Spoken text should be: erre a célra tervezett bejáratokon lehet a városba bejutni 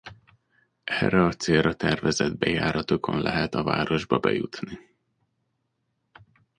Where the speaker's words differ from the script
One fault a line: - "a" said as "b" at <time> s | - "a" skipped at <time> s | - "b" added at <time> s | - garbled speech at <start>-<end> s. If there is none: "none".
none